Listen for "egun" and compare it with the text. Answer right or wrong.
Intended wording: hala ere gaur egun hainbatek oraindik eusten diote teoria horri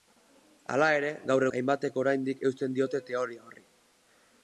wrong